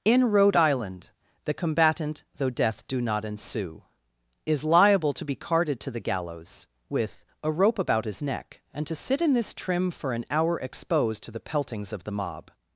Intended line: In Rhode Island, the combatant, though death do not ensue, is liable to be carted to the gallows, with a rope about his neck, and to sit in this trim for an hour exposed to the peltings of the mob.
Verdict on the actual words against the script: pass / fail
pass